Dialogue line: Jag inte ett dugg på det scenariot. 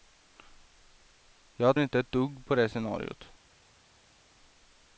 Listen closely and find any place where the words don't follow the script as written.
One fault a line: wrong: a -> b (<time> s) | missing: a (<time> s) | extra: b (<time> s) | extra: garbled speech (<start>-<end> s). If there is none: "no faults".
no faults